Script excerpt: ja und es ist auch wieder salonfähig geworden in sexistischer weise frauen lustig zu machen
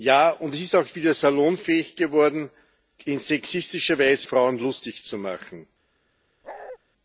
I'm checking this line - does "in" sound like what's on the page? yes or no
yes